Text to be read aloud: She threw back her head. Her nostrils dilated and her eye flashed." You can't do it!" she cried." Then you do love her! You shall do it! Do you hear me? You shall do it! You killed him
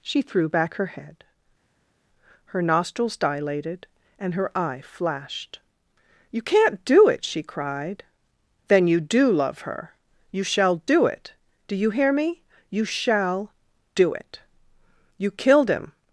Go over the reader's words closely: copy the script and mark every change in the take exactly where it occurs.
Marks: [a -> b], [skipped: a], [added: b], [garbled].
She threw back her head. Her nostrils dilated and her eye flashed." You can't do it!" she cried." Then you do love her! You shall do it! Do you hear me? You shall do it! You killed him